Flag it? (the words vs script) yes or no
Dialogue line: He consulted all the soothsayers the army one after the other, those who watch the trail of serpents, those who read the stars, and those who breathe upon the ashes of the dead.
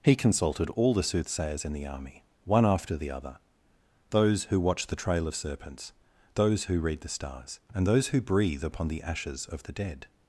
yes